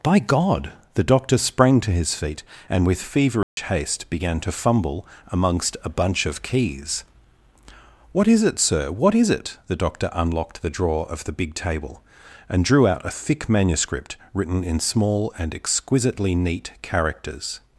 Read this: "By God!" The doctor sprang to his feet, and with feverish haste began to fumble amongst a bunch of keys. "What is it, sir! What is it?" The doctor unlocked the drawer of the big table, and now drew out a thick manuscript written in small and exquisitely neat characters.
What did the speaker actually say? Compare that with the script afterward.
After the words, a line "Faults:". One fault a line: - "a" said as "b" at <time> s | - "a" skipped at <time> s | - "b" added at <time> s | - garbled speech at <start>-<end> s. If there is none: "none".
"By God!" The doctor sprang to his feet, and with feverish haste began to fumble amongst a bunch of keys. "What is it, sir! What is it?" The doctor unlocked the drawer of the big table, and drew out a thick manuscript written in small and exquisitely neat characters.
Faults:
- "now" skipped at 12.6 s